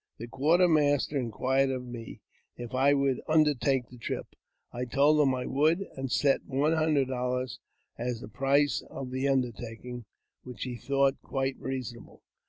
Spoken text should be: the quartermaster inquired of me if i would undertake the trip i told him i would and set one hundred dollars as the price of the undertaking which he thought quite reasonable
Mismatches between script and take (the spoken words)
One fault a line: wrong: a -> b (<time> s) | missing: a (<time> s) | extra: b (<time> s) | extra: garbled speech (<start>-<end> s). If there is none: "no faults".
no faults